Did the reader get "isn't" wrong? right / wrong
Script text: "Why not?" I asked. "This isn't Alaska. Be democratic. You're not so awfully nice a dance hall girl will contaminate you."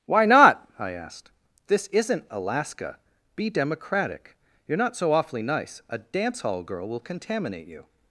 right